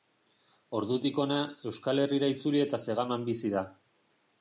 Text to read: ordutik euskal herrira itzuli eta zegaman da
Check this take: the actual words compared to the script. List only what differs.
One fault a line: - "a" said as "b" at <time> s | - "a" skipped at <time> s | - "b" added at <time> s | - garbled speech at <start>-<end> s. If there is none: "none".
- "hona" added at 1.2 s
- "bizi" added at 3.3 s